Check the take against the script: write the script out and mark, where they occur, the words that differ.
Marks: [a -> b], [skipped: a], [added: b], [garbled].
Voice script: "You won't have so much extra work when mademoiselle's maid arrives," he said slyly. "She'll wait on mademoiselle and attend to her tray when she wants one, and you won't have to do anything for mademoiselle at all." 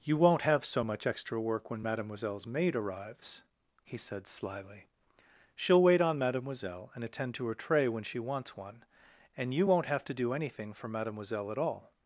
"You won't have so much extra work when mademoiselle's maid arrives," he said slyly. "She'll wait on mademoiselle and attend to her tray when she wants one, and you won't have to do anything for mademoiselle at all."